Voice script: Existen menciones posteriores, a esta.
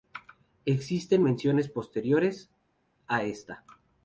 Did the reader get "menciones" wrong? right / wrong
right